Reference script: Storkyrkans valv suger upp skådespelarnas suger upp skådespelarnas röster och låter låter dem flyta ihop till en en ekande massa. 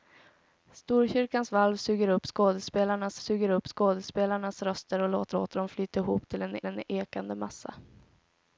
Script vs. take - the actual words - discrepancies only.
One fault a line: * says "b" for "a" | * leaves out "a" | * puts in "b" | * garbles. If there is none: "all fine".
all fine